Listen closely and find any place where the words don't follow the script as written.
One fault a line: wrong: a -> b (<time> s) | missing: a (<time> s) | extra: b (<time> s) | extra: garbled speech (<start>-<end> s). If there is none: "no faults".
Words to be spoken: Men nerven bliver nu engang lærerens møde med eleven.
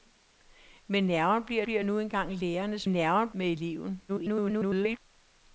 extra: bliver (1.6 s)
wrong: møde -> nerven (2.9 s)
extra: garbled speech (4.1-5.0 s)